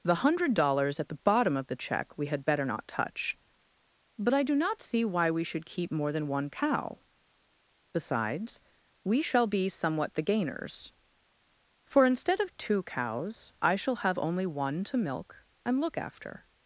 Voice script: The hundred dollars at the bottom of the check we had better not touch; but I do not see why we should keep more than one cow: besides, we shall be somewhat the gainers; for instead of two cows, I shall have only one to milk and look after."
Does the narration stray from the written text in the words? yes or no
no